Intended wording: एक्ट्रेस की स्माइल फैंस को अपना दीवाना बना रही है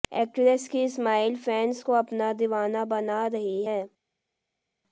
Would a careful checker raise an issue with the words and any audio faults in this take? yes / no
no